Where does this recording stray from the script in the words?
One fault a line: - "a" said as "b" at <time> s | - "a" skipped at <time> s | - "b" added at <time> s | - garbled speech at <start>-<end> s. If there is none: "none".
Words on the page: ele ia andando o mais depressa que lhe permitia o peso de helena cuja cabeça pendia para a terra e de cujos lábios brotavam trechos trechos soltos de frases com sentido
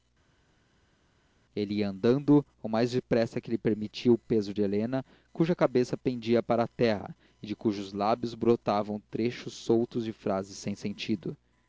- "trechos" skipped at 9.5 s
- "com" said as "sem" at 10.6 s